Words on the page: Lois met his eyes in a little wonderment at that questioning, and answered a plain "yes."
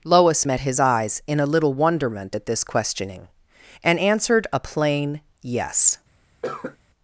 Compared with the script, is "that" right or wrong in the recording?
wrong